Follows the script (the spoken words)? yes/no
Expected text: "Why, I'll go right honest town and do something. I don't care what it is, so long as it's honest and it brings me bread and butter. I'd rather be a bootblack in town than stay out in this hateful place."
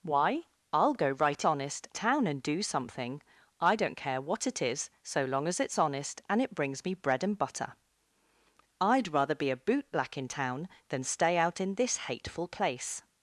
yes